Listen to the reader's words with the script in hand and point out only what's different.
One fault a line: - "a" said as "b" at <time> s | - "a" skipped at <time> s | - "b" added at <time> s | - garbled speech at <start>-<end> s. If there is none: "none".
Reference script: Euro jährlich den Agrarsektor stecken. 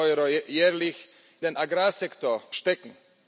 none